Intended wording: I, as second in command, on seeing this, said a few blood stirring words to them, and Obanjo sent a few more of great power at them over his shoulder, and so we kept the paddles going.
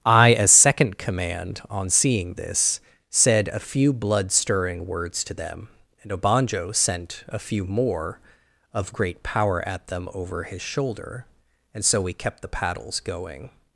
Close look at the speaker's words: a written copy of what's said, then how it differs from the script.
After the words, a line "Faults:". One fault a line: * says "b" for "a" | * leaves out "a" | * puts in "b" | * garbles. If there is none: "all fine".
I, as second command, on seeing this, said a few blood stirring words to them, and Obanjo sent a few more of great power at them over his shoulder, and so we kept the paddles going.
Faults:
* leaves out "in"